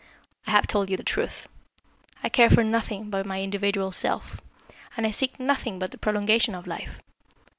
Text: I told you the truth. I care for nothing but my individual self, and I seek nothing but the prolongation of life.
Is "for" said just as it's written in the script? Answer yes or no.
yes